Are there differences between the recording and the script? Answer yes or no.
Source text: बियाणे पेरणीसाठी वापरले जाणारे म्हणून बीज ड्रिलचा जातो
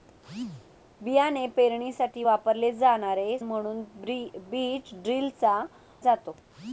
no